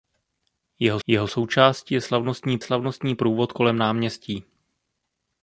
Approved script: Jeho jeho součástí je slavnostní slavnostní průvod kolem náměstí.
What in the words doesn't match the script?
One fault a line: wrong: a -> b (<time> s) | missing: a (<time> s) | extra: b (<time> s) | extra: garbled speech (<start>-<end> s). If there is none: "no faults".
no faults